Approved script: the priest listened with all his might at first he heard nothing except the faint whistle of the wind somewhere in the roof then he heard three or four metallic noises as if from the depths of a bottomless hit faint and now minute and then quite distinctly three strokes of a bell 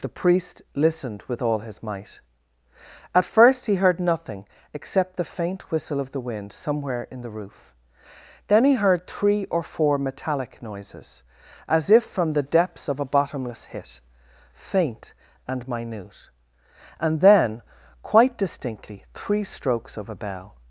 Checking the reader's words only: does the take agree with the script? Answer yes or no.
no